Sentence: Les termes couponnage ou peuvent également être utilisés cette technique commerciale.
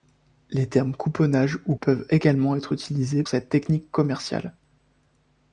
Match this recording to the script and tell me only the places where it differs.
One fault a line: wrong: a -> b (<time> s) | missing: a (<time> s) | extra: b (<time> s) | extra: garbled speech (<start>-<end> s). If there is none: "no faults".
no faults